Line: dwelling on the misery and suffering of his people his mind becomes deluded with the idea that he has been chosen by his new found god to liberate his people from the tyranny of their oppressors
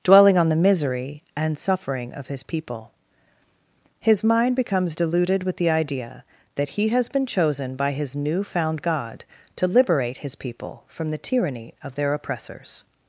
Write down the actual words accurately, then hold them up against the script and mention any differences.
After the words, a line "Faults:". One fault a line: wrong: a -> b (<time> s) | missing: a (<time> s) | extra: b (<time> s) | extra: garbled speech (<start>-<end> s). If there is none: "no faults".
dwelling on the misery and suffering of his people his mind becomes deluded with the idea that he has been chosen by his new found god to liberate his people from the tyranny of their oppressors
Faults:
no faults